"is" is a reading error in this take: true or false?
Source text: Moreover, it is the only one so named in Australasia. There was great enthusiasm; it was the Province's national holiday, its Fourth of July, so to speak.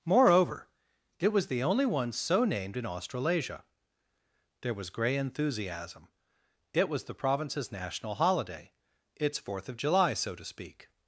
true